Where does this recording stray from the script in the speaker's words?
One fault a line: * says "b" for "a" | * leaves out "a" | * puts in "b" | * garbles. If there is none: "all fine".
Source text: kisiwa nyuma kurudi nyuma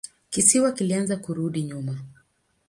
* says "kilianza" for "nyuma"